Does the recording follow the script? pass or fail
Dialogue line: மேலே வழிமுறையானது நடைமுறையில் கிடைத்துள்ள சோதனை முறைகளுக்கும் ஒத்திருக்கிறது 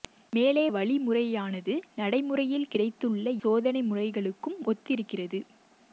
pass